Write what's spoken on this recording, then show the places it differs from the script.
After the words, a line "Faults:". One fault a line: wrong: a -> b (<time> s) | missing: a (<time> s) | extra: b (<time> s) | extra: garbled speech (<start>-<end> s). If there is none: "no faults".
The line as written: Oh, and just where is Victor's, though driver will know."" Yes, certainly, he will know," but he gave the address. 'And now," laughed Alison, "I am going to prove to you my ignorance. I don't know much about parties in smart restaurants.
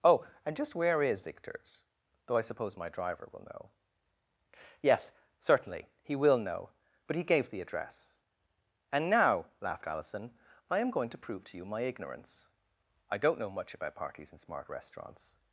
Oh, and just where is Victor's, though I suppose my driver will know."" Yes, certainly, he will know," but he gave the address. 'And now," laughed Alison, "I am going to prove to you my ignorance. I don't know much about parties in smart restaurants.
Faults:
extra: I suppose my (2.4 s)